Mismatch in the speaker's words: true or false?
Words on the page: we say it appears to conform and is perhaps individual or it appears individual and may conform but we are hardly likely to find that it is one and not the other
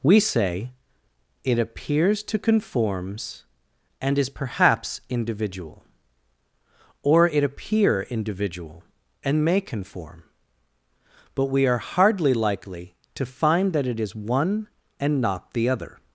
true